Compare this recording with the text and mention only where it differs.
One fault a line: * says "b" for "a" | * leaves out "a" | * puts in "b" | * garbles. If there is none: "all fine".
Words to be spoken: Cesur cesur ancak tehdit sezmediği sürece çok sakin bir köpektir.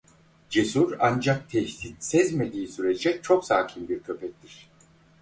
* leaves out "cesur"